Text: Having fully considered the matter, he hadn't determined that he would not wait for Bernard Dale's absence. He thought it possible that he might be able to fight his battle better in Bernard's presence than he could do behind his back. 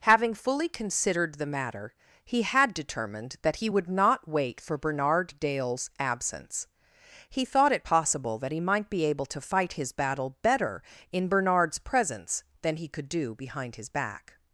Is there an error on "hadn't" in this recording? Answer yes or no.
yes